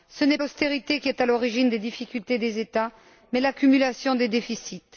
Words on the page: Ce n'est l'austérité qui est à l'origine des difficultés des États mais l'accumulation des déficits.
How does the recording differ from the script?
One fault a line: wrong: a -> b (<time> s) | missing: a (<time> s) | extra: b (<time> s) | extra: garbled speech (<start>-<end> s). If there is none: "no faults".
no faults